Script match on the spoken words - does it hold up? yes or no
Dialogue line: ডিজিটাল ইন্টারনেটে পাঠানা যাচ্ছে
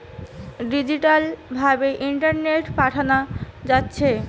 no